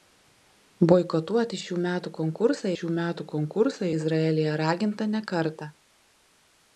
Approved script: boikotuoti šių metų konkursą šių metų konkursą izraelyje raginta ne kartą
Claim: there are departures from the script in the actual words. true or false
false